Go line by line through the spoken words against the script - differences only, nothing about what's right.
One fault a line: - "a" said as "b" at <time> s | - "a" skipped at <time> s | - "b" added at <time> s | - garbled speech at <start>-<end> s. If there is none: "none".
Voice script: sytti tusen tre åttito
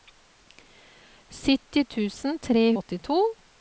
none